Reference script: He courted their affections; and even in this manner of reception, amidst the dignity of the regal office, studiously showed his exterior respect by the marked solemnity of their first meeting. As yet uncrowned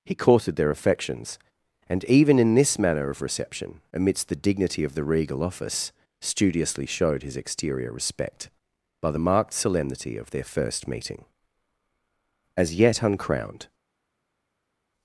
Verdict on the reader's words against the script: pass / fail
pass